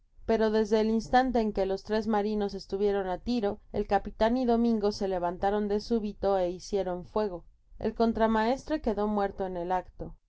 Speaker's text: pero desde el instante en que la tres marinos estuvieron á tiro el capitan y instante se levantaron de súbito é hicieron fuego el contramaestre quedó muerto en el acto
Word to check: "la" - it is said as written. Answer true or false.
false